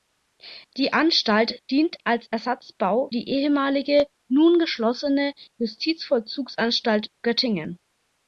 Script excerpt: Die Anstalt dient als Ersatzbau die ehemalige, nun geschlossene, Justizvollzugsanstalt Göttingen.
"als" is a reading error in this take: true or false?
false